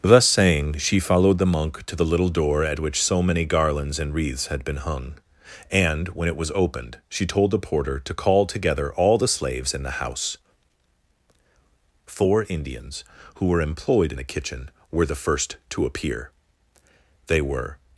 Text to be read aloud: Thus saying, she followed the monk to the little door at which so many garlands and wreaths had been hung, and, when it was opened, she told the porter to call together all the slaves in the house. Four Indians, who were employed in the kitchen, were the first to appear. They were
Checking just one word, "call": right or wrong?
right